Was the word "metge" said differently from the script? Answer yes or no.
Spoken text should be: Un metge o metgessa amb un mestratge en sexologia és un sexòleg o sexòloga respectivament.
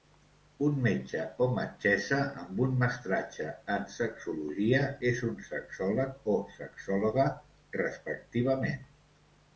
no